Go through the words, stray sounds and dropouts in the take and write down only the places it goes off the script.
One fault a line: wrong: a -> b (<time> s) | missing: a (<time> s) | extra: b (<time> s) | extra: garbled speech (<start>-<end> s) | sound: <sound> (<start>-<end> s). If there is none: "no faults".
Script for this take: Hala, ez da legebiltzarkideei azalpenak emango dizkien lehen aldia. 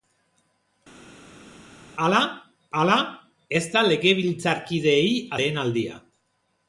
extra: hala (2.8 s)
missing: azalpenak emango dizkien (5.1 s)